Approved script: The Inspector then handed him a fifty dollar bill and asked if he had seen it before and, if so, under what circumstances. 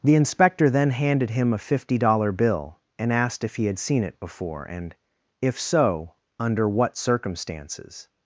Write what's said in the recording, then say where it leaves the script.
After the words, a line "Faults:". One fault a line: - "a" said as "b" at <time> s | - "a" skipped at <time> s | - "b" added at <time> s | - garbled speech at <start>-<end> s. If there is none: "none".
The Inspector then handed him a fifty dollar bill and asked if he had seen it before and, if so, under what circumstances.
Faults:
none